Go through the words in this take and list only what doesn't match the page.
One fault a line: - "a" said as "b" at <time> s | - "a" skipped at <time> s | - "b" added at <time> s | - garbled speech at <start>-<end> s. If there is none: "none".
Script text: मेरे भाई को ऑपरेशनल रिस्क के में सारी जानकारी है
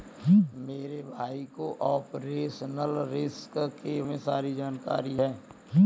none